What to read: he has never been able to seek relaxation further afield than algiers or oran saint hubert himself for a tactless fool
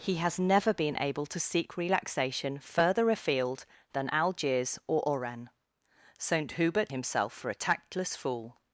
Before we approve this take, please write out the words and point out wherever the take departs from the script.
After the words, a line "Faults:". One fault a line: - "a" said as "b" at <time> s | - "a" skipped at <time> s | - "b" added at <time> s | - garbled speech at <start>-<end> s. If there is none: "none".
he has never been able to seek relaxation further afield than algiers or oran saint hubert himself for a tactless fool
Faults:
none